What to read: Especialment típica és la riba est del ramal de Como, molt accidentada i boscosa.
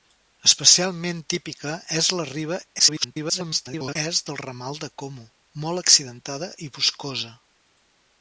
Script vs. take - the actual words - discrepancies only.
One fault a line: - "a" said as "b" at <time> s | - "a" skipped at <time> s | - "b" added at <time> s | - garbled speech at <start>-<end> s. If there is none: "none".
- garbled speech at 2.8-4.0 s